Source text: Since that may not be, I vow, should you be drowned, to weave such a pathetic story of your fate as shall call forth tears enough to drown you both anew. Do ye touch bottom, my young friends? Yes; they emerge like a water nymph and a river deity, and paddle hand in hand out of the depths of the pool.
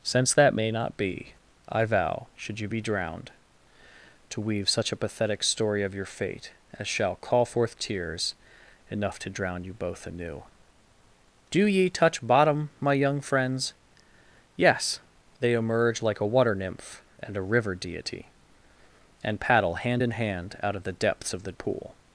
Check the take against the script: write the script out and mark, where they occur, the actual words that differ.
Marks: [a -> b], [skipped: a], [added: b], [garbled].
Since that may not be, I vow, should you be drowned, to weave such a pathetic story of your fate as shall call forth tears enough to drown you both anew. Do ye touch bottom, my young friends? Yes; they emerge like a water nymph and a river deity, and paddle hand in hand out of the depths of the pool.